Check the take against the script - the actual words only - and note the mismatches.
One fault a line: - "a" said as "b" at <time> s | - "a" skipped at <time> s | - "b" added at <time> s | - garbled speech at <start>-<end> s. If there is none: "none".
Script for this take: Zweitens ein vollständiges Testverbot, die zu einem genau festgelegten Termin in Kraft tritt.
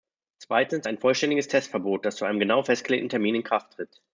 - "die" said as "das" at 2.0 s